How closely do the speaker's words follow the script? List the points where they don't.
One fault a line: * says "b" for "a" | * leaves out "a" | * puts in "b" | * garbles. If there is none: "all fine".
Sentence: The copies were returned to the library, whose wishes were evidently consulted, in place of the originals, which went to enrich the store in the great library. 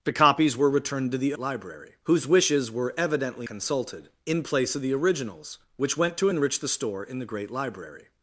all fine